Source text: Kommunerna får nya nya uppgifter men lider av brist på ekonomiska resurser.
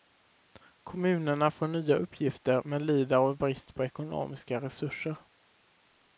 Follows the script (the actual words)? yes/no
no